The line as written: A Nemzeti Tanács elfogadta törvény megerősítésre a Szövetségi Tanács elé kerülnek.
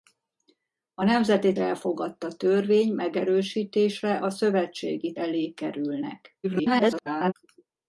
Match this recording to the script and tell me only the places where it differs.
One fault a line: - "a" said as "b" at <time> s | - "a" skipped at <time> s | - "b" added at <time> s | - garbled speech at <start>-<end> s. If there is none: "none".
- "Tanács" skipped at 1.5 s
- "Tanács" skipped at 5.1 s
- garbled speech at 6.4-7.3 s